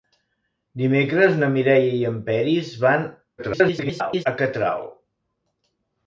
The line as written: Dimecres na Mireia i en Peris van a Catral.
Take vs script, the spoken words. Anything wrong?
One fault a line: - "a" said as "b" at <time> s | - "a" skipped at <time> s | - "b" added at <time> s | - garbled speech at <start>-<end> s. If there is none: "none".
- garbled speech at 3.4-4.3 s